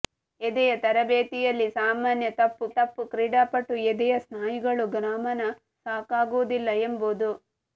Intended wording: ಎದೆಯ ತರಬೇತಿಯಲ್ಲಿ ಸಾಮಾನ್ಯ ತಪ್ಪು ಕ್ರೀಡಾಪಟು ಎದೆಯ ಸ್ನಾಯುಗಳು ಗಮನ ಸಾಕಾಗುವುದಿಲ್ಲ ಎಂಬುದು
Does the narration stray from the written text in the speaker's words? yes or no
yes